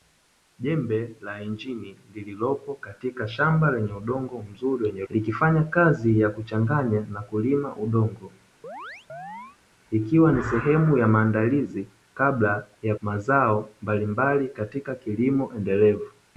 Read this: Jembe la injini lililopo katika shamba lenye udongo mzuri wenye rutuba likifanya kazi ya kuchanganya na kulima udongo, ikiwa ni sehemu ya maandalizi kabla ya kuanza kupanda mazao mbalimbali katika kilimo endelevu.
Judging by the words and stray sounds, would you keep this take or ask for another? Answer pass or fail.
fail